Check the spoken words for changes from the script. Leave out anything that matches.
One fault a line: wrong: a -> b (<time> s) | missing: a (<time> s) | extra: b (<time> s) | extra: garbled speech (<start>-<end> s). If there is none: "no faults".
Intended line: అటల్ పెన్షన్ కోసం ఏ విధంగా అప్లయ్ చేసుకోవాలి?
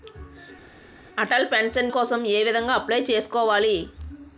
no faults